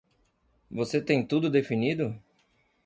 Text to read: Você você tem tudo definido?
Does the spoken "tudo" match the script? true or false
true